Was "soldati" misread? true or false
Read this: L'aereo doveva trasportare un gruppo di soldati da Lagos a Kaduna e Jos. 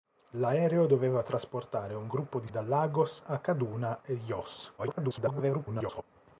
true